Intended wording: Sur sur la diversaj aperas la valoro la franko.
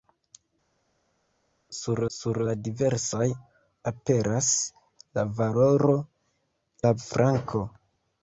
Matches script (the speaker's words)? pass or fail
pass